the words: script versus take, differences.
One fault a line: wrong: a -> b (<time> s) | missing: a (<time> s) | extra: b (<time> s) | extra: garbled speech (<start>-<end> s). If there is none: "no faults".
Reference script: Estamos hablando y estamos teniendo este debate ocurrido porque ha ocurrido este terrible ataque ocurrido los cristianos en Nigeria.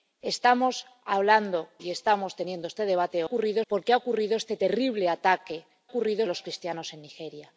no faults